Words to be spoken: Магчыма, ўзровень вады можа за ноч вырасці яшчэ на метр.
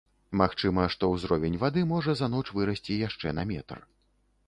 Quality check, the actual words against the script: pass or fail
fail